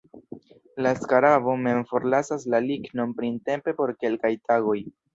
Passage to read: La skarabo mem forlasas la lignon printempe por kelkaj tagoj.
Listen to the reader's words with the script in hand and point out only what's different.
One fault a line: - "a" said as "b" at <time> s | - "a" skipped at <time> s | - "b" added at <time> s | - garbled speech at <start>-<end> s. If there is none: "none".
none